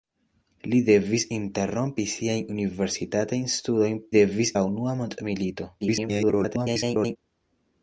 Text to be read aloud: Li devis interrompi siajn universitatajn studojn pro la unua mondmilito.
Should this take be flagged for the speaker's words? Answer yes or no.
yes